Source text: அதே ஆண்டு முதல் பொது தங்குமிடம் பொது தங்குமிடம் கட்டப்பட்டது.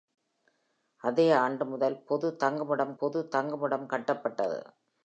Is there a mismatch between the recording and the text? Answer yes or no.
no